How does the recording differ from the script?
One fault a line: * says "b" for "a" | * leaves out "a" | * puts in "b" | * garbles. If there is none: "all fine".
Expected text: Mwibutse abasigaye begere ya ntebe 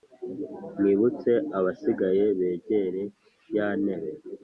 all fine